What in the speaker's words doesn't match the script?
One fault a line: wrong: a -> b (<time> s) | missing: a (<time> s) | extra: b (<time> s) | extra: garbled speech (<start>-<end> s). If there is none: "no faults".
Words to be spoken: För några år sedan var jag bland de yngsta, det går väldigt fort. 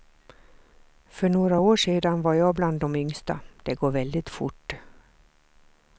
no faults